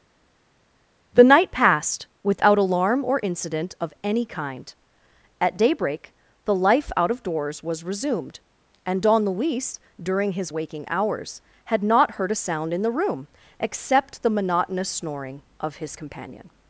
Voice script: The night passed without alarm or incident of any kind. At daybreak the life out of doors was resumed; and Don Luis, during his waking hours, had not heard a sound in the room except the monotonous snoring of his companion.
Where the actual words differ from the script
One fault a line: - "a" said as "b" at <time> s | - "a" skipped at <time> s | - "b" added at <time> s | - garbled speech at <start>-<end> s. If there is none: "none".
none